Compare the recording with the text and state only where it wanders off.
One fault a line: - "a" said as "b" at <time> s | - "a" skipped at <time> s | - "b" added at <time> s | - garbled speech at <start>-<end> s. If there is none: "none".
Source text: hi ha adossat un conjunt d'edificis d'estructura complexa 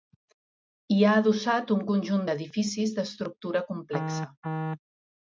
none